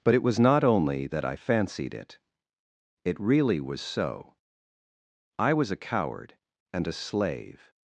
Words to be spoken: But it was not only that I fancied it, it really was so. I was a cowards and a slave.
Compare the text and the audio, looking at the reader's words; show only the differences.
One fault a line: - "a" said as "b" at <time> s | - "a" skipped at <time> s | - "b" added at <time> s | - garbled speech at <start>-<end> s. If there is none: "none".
- "cowards" said as "coward" at 5.8 s